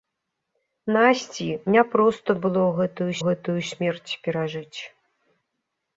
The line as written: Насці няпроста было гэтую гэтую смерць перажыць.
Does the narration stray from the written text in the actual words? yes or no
no